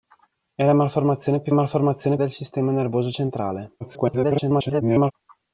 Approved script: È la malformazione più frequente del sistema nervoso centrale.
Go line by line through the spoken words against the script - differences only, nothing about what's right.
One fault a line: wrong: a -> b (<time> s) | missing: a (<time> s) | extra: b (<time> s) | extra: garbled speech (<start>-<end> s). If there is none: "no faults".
wrong: frequente -> malformazione (1.5 s)
extra: garbled speech (3.8-5.1 s)